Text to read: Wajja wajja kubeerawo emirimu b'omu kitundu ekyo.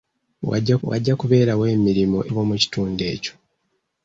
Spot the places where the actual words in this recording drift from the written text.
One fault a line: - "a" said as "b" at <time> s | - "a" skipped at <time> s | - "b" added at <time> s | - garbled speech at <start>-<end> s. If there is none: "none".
none